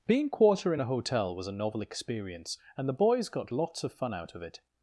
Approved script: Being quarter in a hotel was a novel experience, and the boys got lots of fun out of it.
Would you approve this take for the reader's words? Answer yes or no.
yes